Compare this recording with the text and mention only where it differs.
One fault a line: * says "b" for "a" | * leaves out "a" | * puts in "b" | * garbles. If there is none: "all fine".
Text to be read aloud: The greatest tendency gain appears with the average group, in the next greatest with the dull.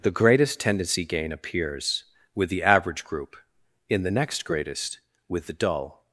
all fine